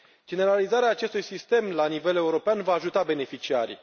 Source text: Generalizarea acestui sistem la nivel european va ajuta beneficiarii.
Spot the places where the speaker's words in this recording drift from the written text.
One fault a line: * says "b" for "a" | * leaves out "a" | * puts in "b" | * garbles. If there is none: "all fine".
all fine